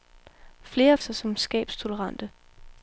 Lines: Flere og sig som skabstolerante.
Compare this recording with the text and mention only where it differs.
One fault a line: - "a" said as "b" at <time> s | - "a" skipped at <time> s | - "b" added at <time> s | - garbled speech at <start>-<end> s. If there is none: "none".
none